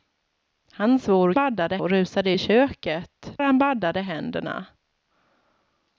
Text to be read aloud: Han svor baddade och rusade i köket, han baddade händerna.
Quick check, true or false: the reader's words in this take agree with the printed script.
true